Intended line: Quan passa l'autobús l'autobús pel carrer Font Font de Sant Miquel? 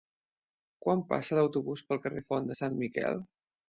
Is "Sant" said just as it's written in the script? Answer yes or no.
yes